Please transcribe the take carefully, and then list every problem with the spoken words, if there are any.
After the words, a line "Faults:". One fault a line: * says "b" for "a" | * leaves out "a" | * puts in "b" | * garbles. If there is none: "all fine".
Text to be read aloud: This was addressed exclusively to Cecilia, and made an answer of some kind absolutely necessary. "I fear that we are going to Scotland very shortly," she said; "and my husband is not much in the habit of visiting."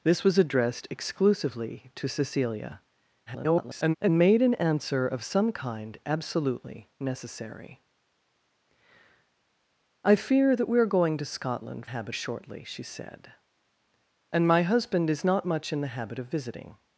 This was addressed exclusively to Cecilia, [garbled] and made an answer of some kind absolutely necessary. "I fear that we are going to Scotland habit shortly," she said; "and my husband is not much in the habit of visiting."
Faults:
* garbles
* says "habit" for "very"